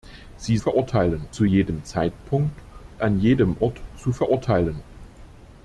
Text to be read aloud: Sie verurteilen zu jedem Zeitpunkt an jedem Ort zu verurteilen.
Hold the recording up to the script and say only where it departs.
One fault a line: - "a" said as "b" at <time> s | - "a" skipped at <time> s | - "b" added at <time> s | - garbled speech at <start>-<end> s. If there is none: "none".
none